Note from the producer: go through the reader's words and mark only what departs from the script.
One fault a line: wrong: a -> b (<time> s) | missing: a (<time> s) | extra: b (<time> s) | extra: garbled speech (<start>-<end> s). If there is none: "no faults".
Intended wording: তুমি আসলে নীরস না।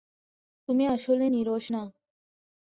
no faults